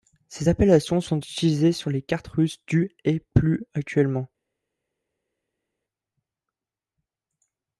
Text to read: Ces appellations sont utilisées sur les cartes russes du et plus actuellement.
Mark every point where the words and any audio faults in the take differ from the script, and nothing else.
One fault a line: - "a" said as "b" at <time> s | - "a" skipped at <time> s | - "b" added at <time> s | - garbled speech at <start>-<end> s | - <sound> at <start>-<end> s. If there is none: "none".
none